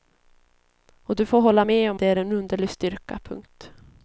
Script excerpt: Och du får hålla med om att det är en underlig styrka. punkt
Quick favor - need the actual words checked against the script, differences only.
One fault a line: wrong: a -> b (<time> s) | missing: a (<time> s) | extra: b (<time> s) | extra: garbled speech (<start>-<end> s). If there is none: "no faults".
missing: att (2.0 s)